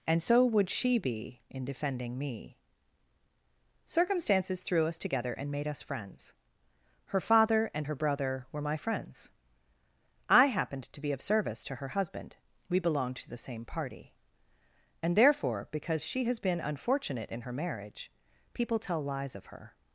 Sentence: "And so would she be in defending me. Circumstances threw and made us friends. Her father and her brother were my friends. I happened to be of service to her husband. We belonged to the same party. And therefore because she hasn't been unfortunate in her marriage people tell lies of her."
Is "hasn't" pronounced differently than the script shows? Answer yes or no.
yes